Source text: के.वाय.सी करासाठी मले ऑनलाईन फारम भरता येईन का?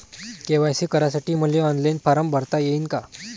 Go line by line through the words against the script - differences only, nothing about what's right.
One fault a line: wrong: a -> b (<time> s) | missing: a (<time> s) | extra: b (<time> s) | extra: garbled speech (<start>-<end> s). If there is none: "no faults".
no faults